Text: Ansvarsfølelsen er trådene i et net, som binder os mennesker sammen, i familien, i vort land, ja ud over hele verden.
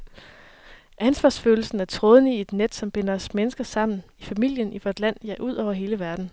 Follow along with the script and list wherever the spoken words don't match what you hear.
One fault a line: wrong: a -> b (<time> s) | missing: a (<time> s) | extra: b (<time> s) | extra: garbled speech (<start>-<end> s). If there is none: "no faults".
no faults